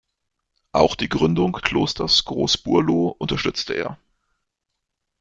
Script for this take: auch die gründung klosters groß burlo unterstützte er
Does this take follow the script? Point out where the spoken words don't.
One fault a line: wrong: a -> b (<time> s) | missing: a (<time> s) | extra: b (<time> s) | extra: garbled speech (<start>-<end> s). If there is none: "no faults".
no faults